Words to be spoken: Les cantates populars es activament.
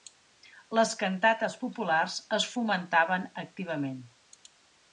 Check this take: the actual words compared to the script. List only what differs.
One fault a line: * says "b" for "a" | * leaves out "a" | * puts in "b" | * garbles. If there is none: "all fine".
* puts in "fomentaven"